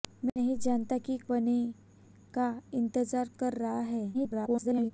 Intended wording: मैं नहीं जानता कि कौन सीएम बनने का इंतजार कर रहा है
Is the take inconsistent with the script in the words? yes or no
yes